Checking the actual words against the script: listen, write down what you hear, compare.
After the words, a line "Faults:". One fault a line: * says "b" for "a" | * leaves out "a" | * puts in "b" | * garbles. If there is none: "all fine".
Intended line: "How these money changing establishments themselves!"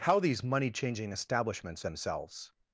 "How these money changing establishments themselves!"
Faults:
all fine